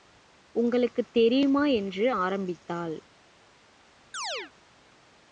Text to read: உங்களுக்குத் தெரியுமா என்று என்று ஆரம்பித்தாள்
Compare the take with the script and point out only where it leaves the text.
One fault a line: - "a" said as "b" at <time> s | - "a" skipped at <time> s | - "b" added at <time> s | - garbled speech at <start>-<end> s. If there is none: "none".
- "என்று" skipped at 2.1 s